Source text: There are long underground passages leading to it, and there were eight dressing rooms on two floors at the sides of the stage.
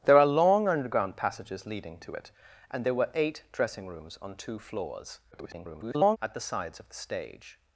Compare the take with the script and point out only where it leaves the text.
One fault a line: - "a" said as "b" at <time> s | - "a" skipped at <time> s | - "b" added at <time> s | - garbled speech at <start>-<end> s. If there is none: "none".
- garbled speech at 5.3-6.2 s